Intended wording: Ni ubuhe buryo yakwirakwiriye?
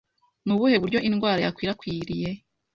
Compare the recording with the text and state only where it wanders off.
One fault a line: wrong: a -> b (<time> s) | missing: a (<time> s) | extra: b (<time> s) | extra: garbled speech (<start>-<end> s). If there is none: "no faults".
extra: indwara (1.1 s)